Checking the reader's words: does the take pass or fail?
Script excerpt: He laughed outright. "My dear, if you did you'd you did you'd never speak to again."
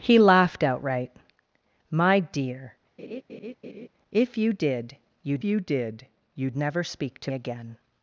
pass